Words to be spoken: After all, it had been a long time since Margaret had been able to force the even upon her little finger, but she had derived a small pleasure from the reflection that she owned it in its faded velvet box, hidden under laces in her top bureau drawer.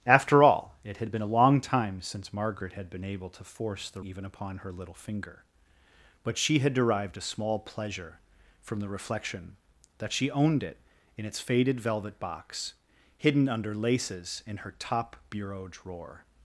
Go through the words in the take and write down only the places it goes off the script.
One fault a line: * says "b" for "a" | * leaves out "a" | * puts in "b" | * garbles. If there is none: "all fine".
all fine